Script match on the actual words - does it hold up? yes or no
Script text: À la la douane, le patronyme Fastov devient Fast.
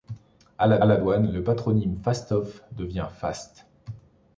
yes